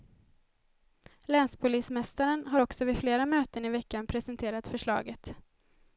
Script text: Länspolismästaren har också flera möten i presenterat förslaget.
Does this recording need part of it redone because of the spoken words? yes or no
yes